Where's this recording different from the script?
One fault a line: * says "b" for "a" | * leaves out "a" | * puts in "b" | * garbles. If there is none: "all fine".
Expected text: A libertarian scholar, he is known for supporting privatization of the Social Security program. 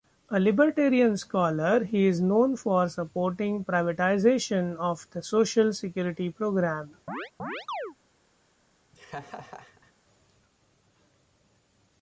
all fine